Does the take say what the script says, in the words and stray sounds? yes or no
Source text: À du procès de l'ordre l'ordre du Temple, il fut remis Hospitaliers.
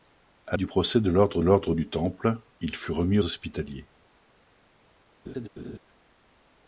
no